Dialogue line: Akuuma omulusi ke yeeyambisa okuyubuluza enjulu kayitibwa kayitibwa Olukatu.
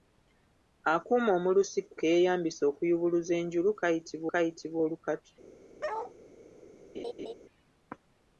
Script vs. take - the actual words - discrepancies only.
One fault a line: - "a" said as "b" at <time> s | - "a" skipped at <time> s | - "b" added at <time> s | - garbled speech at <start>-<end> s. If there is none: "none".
none